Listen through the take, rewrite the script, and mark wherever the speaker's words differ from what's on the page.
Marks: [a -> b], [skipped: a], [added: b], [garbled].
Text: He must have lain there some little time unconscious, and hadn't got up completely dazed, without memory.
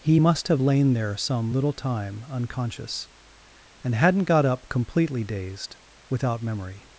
He must have lain there some little time unconscious, and hadn't got up completely dazed, without memory.